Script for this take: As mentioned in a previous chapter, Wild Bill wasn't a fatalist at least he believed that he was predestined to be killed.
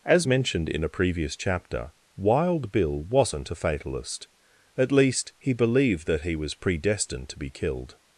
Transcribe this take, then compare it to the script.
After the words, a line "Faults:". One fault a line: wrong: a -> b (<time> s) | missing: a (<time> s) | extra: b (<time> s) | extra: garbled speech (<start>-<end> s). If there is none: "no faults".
As mentioned in a previous chapter, Wild Bill wasn't a fatalist at least he believed that he was predestined to be killed.
Faults:
no faults